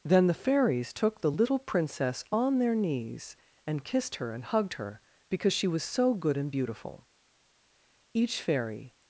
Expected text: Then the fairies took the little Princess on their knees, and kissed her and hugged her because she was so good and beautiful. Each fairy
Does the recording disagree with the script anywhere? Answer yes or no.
no